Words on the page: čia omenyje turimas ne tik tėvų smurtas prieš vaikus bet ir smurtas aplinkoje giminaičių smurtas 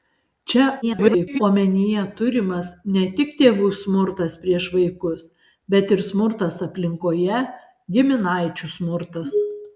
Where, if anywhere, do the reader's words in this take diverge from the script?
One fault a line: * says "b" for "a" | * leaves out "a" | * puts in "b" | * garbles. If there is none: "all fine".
* garbles